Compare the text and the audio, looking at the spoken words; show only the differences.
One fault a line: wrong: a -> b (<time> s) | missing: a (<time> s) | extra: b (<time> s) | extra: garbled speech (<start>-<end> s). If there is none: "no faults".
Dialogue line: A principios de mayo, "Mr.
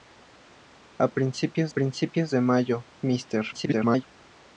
extra: principios (1.7 s)
extra: garbled speech (3.5-4.0 s)